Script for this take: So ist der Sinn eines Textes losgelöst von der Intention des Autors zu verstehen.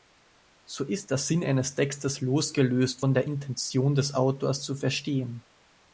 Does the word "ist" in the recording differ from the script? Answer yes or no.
no